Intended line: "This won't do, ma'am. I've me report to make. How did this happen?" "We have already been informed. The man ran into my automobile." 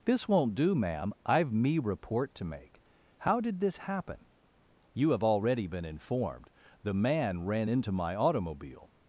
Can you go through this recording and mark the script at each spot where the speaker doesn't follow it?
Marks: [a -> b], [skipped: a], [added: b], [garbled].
"This won't do, ma'am. I've me report to make. How did this happen?" ["We -> You] have already been informed. The man ran into my automobile."